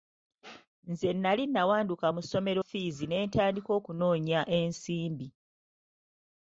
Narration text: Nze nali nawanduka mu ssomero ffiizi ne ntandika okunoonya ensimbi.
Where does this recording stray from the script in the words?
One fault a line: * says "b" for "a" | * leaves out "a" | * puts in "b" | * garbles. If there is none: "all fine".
all fine